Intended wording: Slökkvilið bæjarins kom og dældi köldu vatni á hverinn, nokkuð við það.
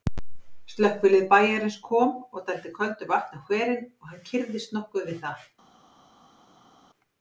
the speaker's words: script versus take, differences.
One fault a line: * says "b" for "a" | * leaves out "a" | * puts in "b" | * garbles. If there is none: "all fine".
* puts in "og hann kyrrðist"